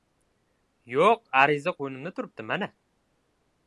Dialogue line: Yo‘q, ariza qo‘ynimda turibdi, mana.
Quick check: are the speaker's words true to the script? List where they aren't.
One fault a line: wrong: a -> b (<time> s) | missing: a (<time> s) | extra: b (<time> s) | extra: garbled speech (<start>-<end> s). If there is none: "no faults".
no faults